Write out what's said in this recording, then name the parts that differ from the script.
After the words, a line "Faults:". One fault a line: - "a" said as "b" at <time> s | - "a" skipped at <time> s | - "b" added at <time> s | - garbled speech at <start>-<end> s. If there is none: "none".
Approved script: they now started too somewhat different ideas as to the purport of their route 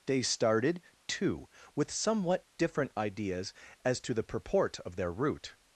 they started too with somewhat different ideas as to the purport of their route
Faults:
- "now" skipped at 0.2 s
- "with" added at 1.8 s